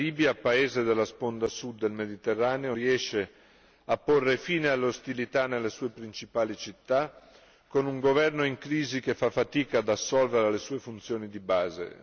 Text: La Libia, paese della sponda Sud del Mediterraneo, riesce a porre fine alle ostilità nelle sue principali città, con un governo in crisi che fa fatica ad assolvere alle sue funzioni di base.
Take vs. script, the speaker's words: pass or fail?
pass